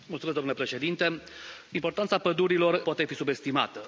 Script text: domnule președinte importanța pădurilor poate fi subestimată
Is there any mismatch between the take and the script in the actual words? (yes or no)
no